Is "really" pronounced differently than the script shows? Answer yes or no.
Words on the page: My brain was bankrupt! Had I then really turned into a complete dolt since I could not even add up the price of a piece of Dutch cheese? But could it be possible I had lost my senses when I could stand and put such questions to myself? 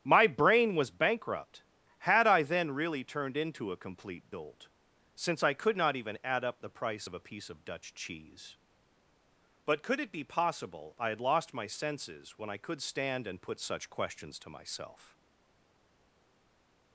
no